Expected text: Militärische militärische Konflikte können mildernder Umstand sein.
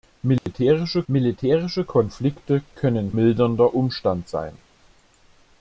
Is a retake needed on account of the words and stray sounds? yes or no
yes